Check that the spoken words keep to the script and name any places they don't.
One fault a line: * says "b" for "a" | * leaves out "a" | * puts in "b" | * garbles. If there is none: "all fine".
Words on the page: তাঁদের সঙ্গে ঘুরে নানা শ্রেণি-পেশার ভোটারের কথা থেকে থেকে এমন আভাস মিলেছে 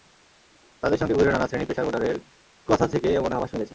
* leaves out "থেকে"